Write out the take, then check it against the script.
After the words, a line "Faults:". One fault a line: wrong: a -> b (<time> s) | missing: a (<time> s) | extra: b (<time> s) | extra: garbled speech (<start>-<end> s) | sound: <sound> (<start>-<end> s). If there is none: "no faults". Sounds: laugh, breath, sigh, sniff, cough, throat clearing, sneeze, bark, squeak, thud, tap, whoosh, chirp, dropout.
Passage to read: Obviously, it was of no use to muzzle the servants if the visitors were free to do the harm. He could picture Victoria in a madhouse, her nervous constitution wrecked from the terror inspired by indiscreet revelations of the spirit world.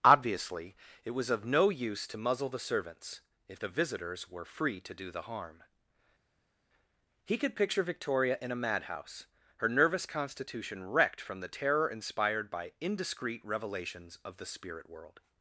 Obviously, it was of no use to muzzle the servants if the visitors were free to do the harm. He could picture Victoria in a madhouse, her nervous constitution wrecked from the terror inspired by indiscreet revelations of the spirit world.
Faults:
no faults